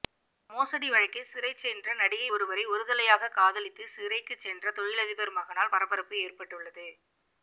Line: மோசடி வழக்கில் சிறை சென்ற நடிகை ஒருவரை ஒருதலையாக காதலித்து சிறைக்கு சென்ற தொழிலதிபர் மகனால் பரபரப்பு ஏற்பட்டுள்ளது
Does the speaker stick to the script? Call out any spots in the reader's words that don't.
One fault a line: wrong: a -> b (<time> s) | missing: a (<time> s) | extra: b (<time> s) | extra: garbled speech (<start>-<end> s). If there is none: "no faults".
no faults